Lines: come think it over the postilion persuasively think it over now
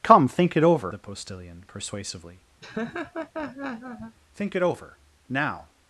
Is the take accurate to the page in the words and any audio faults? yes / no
no